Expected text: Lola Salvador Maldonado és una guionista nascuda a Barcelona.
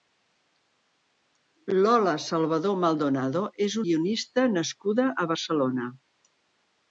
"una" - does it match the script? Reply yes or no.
no